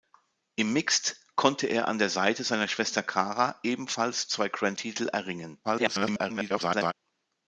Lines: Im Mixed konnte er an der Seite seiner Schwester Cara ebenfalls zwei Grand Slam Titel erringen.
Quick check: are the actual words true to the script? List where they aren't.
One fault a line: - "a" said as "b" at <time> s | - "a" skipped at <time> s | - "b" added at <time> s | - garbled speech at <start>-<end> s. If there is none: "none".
- "Slam" skipped at 4.8 s
- garbled speech at 5.6-6.9 s